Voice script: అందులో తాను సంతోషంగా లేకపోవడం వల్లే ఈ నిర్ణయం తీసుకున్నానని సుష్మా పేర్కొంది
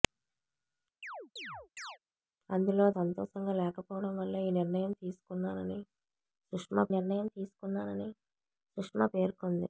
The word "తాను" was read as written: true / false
false